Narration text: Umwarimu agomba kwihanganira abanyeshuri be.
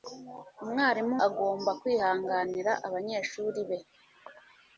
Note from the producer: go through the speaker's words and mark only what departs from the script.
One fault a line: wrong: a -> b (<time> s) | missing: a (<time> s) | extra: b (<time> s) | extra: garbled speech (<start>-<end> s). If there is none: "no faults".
no faults